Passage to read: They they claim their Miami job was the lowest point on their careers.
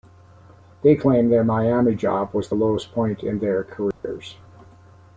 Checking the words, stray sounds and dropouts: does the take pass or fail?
fail